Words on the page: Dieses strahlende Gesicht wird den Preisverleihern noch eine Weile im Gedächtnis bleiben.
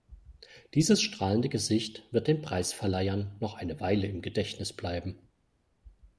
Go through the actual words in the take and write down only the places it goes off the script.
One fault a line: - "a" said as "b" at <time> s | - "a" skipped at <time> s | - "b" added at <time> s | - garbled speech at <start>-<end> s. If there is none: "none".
none